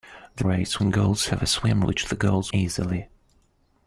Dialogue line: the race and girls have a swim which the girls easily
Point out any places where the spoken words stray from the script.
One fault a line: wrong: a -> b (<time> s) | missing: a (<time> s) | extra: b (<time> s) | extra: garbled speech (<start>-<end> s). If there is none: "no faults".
no faults